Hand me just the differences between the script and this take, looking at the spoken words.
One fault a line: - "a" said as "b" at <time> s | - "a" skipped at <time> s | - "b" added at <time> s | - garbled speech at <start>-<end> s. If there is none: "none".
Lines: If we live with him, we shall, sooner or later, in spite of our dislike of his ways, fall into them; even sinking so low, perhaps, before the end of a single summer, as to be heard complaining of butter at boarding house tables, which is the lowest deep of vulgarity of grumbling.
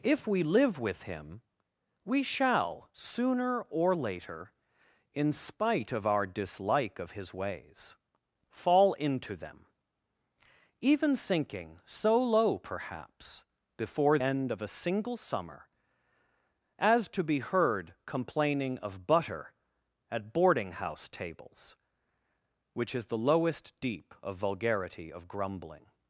- "the" skipped at 14.2 s